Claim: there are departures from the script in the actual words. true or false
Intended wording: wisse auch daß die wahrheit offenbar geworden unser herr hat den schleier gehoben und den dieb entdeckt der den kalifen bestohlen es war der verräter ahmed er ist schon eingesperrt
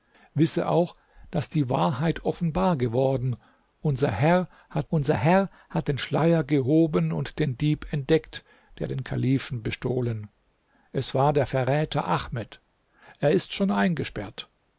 true